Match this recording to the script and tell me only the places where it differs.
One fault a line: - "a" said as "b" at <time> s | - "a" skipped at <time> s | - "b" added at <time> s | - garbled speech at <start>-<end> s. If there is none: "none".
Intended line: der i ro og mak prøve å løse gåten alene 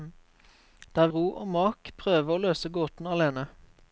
none